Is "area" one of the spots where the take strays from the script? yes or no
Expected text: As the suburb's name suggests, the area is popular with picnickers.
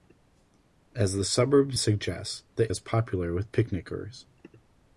yes